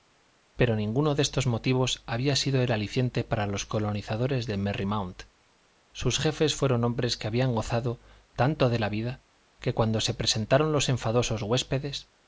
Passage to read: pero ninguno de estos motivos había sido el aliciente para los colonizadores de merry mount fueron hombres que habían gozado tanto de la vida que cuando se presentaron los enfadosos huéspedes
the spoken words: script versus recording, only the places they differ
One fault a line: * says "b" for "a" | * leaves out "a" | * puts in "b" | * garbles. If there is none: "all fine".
* puts in "sus jefes"